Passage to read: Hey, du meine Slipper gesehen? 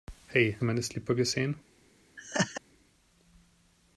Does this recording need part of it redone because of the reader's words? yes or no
no